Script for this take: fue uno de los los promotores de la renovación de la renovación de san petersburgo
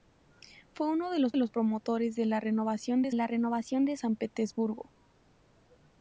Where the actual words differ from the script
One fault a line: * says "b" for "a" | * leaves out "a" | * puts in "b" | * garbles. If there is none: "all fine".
all fine